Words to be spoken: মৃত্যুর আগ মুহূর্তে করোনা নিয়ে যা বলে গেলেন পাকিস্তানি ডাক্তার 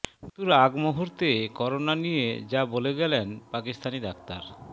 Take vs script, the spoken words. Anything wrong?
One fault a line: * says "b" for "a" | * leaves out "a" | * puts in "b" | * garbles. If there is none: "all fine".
all fine